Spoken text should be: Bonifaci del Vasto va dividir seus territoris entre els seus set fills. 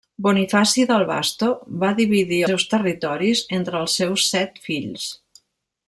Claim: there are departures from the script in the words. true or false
false